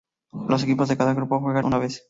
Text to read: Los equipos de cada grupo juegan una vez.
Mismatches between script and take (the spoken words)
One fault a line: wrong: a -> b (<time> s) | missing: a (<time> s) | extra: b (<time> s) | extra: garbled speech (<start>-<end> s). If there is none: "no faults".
no faults